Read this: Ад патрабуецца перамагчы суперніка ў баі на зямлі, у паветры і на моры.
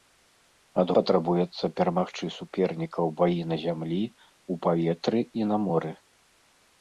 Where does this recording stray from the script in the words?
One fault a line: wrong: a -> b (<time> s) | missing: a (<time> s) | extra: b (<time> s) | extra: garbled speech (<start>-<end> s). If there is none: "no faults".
no faults